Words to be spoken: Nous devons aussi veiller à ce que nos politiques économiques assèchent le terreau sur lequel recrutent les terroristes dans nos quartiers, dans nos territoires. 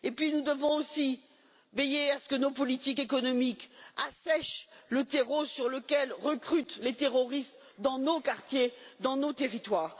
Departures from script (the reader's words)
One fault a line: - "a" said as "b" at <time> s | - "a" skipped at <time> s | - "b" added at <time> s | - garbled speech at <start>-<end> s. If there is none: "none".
none